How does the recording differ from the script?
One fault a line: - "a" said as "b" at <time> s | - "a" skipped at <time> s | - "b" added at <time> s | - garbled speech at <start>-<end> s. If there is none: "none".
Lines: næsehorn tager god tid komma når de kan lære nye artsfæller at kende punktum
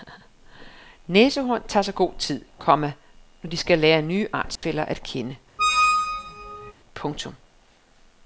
- "sig" added at 1.8 s
- "kan" said as "skal" at 3.6 s